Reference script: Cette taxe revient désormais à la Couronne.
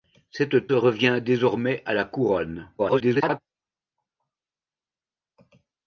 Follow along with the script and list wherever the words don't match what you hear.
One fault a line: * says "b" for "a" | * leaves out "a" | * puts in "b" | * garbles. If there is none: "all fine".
* leaves out "taxe"
* garbles